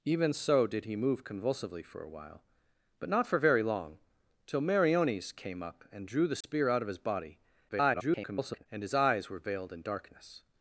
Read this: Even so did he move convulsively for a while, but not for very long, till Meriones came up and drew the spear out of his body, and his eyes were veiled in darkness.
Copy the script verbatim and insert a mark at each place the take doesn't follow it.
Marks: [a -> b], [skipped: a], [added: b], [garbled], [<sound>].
Even so did he move convulsively for a while, but not for very long, till Meriones came up and drew the spear [dropout] out of his body, [garbled] and his eyes were veiled in darkness.